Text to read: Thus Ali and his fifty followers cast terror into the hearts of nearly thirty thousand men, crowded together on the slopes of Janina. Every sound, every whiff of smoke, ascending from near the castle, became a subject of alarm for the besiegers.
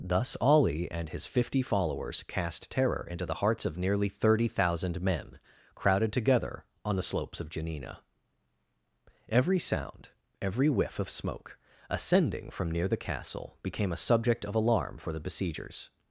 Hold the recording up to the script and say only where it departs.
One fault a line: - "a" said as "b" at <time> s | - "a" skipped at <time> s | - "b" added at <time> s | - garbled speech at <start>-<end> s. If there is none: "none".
none